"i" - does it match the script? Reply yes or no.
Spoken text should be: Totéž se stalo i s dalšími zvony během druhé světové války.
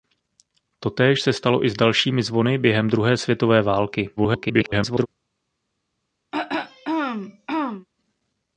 yes